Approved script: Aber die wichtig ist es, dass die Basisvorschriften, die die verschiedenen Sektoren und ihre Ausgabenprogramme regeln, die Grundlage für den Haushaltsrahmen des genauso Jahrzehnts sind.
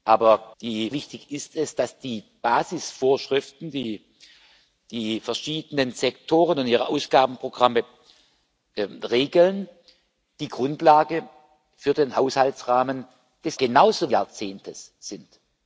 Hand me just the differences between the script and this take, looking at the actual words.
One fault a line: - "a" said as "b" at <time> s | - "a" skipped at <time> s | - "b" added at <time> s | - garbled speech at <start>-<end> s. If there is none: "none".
none